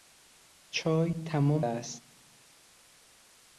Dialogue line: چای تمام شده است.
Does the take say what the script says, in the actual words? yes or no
no